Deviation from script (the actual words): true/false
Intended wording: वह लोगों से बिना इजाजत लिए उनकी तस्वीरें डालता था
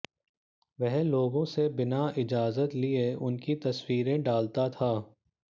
false